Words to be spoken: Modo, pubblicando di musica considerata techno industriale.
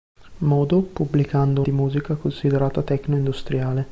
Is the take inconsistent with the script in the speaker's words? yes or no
no